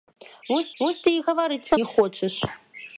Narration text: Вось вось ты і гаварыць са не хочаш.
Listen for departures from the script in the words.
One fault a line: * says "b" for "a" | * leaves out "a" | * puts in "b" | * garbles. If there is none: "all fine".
all fine